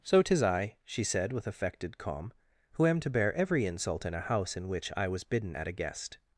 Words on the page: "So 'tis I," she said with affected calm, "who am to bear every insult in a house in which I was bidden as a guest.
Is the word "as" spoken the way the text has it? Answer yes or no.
no